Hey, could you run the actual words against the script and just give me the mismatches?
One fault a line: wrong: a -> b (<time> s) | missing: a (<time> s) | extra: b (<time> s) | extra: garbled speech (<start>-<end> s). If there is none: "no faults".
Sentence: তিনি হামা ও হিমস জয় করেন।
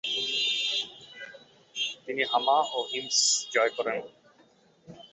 no faults